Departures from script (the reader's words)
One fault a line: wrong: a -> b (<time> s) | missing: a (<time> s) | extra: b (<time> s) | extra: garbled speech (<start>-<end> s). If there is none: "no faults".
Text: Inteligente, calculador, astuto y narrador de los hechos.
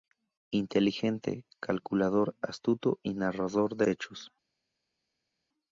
missing: los (3.9 s)